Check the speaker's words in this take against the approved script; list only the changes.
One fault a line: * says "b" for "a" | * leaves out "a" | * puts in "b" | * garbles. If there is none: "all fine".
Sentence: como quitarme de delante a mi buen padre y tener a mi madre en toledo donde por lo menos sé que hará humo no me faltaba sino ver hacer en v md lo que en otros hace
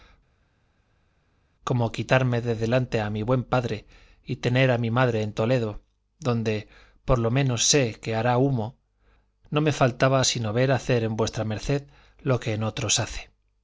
all fine